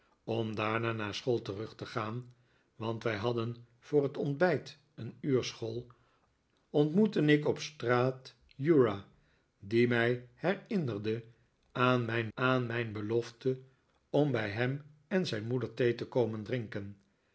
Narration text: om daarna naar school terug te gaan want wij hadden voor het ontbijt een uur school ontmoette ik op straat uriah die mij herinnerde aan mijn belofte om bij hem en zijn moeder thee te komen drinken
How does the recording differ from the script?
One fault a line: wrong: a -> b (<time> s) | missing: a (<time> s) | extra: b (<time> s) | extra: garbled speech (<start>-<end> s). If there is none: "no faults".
extra: aan mijn (12.3 s)